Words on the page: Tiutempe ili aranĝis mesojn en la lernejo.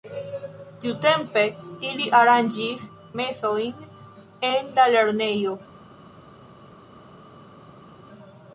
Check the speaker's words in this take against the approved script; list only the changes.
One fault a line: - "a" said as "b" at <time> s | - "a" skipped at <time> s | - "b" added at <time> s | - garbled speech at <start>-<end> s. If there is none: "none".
none